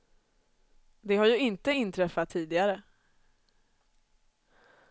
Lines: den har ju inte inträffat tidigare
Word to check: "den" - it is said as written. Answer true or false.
false